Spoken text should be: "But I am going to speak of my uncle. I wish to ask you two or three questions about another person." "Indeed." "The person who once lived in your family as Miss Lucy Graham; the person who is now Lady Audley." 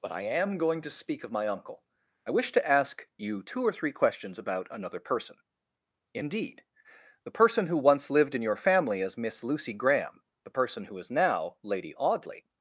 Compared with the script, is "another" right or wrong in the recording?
right